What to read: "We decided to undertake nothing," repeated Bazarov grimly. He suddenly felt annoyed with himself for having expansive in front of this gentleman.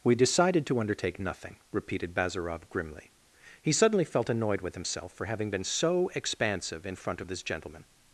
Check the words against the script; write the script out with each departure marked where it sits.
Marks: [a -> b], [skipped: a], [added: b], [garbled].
"We decided to undertake nothing," repeated Bazarov grimly. He suddenly felt annoyed with himself for having [added: been so] expansive in front of this gentleman.